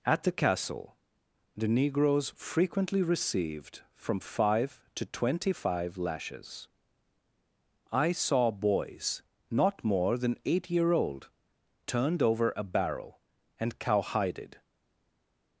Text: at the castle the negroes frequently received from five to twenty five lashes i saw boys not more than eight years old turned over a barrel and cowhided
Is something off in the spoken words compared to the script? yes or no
yes